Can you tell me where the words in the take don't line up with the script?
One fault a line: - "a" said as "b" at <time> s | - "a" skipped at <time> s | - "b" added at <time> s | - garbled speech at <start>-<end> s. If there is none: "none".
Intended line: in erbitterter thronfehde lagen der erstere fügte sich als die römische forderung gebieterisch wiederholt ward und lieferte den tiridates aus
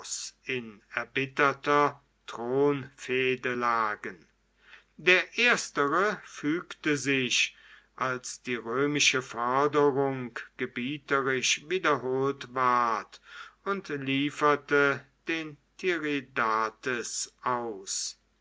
none